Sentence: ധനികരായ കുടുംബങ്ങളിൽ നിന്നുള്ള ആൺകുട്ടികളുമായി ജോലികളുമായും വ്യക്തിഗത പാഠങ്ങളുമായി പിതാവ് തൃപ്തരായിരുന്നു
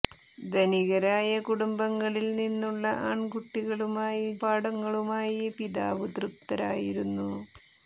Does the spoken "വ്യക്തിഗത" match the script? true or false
false